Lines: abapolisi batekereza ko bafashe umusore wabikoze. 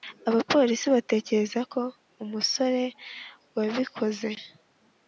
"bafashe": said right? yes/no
no